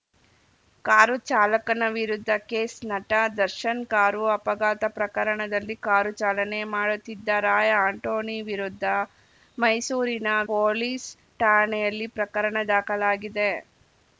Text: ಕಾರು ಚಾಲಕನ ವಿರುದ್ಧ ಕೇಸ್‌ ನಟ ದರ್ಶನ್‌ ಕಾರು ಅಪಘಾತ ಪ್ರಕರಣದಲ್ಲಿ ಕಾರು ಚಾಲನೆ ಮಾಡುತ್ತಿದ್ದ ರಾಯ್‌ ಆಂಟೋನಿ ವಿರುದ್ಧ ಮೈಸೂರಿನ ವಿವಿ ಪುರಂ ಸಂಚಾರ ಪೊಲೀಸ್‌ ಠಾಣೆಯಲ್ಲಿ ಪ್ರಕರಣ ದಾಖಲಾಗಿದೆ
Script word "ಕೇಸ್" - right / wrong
right